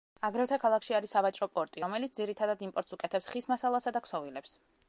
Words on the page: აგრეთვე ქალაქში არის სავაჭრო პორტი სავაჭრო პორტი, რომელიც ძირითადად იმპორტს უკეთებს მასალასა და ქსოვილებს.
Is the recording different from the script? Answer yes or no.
yes